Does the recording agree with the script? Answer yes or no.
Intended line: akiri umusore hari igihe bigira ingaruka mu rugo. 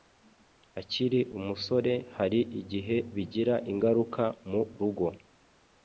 yes